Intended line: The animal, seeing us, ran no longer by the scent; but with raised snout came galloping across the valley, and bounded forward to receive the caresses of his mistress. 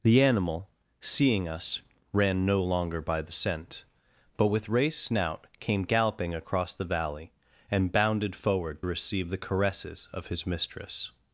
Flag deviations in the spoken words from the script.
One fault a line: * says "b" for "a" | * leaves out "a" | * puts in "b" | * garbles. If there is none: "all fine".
* leaves out "to"